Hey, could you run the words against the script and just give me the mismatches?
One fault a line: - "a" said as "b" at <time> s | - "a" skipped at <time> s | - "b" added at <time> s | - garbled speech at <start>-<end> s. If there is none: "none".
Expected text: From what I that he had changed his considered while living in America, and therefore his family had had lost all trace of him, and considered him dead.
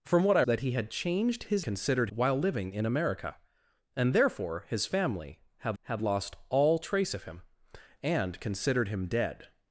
none